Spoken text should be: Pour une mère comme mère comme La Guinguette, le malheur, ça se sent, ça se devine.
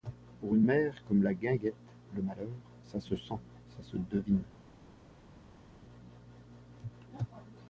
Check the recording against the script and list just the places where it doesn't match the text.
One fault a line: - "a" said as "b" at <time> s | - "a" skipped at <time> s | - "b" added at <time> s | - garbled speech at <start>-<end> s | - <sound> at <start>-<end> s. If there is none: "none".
- "mère comme" skipped at 1.2 s